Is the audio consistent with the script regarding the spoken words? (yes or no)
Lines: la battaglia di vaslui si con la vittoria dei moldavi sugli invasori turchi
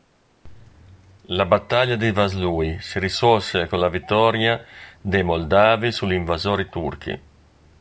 no